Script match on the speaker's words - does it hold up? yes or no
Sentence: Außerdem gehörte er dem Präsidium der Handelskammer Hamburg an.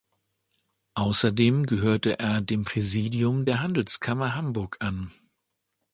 yes